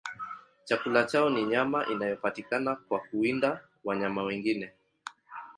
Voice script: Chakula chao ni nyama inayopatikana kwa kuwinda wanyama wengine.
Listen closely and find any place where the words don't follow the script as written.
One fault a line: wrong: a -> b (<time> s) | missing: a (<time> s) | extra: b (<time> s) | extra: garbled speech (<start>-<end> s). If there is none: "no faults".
no faults